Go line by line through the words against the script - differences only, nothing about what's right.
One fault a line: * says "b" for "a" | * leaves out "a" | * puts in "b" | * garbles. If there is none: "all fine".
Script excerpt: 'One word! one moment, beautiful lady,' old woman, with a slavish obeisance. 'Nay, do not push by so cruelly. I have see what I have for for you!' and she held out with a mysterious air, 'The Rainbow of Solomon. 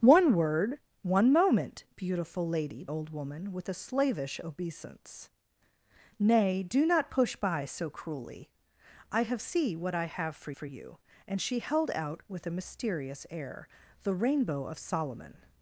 all fine